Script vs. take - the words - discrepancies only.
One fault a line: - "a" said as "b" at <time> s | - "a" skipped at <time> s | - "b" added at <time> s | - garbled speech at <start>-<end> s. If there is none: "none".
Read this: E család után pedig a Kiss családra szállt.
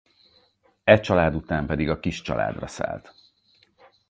none